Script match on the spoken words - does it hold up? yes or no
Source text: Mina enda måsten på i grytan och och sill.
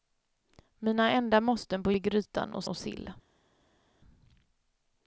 yes